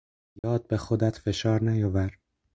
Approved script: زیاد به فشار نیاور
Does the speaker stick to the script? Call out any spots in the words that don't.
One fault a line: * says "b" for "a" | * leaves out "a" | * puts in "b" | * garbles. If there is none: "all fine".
* puts in "خودت"